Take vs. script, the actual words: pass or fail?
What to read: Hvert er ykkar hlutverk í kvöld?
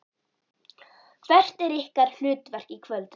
pass